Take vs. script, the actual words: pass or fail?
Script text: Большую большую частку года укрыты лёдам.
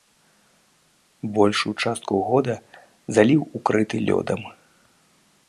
fail